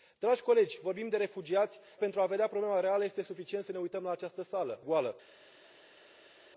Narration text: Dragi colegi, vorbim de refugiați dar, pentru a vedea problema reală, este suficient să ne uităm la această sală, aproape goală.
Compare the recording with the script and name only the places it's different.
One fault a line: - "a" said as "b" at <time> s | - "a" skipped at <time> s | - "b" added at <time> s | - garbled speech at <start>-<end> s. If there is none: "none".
- "dar" skipped at 1.8 s
- "aproape" skipped at 4.8 s